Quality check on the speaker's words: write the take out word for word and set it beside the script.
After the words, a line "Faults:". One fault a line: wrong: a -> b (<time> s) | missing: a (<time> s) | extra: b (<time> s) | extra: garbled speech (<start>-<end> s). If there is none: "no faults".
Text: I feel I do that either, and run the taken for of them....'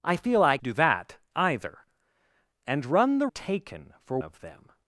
I feel I do that either, and run the taken for of them....'
Faults:
no faults